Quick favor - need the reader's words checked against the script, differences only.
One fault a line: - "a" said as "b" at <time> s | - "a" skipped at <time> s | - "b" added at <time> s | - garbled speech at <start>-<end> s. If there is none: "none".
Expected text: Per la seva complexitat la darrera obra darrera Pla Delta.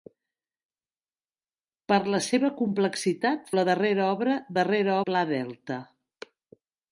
none